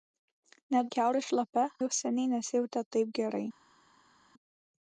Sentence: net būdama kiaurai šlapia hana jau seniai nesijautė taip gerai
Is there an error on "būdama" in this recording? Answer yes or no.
yes